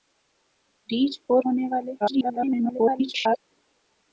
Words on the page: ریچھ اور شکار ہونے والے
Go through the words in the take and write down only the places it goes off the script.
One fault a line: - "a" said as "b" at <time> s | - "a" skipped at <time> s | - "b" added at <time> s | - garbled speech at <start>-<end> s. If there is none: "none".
- "شکار" skipped at 1.4 s
- garbled speech at 2.0-3.4 s